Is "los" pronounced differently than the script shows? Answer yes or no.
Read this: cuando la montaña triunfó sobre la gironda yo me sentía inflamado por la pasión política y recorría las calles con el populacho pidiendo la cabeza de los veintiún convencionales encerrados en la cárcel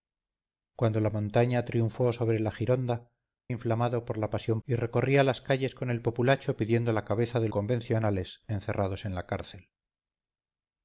yes